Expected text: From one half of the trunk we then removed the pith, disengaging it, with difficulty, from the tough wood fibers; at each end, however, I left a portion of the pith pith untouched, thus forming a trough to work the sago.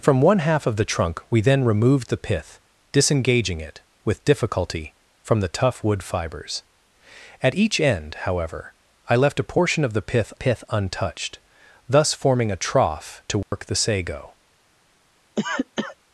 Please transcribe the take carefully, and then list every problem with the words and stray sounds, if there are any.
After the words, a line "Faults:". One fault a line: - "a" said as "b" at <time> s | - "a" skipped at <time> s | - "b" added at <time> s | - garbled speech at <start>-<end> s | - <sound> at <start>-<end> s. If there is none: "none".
From one half of the trunk we then removed the pith, disengaging it, with difficulty, from the tough wood fibers; at each end, however, I left a portion of the pith pith untouched, thus forming a trough to work the sago.
Faults:
- dropout at 13.4-13.5 s
- cough at 15.4-16.0 s